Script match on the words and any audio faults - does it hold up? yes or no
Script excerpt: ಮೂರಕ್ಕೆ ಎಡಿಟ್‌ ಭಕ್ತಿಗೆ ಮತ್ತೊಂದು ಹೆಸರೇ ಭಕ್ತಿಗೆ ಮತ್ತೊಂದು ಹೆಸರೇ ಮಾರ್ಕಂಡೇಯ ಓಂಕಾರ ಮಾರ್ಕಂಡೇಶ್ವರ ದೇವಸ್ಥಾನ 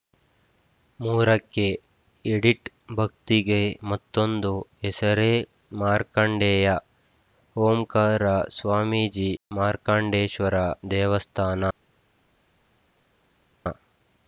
no